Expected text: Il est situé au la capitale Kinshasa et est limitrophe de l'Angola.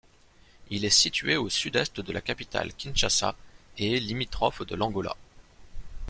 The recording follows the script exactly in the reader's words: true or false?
false